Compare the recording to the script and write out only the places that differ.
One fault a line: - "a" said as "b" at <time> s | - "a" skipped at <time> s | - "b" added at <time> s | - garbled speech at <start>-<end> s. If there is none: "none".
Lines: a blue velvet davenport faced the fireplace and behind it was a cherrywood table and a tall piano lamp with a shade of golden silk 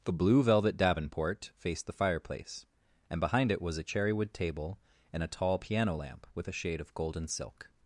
- "a" said as "the" at 0.0 s